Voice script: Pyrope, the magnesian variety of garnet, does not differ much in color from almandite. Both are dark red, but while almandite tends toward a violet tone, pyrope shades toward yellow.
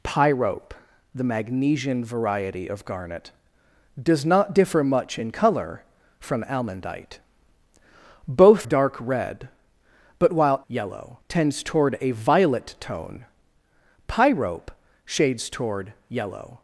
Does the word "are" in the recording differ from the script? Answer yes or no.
yes